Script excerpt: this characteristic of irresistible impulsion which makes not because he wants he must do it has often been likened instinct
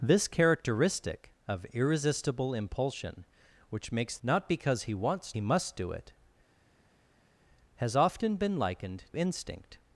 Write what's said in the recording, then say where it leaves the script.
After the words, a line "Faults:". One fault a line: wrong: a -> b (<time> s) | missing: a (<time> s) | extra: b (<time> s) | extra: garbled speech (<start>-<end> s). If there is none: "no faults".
this characteristic of irresistible impulsion which makes not because he wants he must do it has often been likened instinct
Faults:
no faults